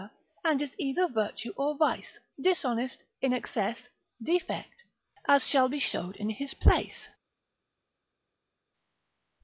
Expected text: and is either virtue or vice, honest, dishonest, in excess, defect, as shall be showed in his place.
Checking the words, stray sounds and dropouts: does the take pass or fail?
fail